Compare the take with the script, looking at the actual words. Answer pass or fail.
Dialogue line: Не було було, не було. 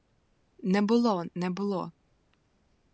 fail